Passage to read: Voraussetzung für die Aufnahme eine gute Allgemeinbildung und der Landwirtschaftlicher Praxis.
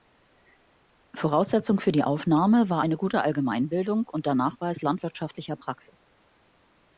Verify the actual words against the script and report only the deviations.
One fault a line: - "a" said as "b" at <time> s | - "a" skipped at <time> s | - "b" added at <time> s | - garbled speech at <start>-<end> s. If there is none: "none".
- "war" added at 2.7 s
- "Nachweis" added at 4.3 s